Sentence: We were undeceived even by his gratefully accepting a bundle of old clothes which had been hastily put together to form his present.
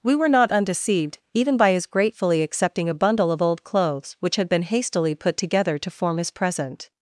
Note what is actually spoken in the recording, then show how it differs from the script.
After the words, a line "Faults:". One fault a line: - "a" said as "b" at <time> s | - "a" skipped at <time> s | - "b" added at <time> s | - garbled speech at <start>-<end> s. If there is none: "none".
We were not undeceived even by his gratefully accepting a bundle of old clothes which had been hastily put together to form his present.
Faults:
- "not" added at 0.3 s